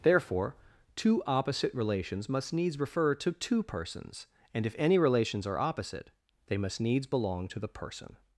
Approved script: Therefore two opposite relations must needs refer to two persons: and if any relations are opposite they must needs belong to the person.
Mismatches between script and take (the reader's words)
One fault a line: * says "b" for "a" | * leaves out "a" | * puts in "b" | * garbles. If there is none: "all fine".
all fine